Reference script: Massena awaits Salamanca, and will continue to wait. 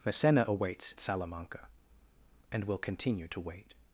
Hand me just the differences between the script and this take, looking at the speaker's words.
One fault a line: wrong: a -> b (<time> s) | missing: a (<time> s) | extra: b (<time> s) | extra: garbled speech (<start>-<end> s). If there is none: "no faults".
no faults